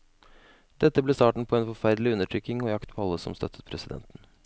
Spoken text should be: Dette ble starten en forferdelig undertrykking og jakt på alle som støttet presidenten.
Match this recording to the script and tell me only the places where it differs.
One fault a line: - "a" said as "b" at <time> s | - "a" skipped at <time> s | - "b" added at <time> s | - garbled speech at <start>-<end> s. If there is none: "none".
- "på" added at 1.5 s